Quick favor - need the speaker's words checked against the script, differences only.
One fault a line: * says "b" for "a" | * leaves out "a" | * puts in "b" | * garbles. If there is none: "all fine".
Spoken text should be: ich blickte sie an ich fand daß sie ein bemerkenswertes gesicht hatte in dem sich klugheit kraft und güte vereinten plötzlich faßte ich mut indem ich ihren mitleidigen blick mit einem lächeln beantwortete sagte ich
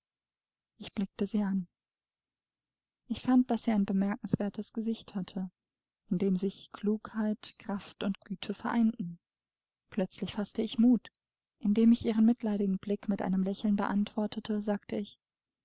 all fine